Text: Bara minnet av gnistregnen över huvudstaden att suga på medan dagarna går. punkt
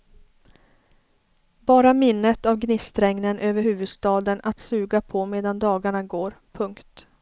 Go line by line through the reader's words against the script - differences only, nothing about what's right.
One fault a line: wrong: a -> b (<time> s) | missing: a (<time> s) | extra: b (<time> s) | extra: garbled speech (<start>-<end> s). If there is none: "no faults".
no faults